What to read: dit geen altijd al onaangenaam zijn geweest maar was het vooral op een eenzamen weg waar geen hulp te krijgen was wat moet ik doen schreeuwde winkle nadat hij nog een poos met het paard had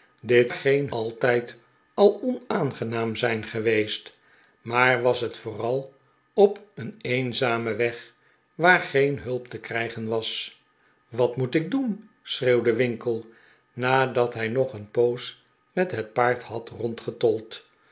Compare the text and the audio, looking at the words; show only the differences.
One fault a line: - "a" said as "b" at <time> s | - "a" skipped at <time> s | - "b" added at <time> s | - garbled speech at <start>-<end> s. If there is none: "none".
none